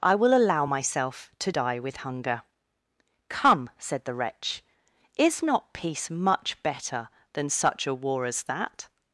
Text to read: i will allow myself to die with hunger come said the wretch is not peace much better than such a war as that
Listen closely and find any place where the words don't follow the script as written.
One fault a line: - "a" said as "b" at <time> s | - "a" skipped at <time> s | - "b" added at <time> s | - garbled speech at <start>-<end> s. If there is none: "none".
none